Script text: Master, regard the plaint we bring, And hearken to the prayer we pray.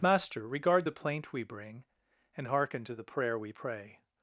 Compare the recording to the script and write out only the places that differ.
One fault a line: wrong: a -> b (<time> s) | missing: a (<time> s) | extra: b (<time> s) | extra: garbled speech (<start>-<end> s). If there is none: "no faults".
no faults